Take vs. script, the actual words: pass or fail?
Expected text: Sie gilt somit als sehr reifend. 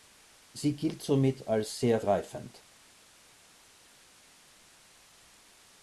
pass